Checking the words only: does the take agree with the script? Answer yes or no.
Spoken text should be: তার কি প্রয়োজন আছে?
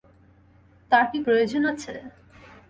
yes